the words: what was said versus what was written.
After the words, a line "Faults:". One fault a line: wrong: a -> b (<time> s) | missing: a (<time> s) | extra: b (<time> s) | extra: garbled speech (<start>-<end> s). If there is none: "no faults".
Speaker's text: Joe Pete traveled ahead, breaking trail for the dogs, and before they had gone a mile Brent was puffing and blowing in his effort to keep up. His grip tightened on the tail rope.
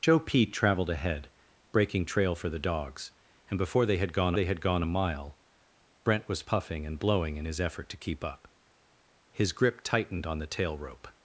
Joe Pete traveled ahead, breaking trail for the dogs, and before they had gone they had gone a mile Brent was puffing and blowing in his effort to keep up. His grip tightened on the tail rope.
Faults:
extra: they had gone (4.3 s)